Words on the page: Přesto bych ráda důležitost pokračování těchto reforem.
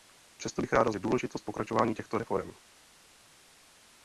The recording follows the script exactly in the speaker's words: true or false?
true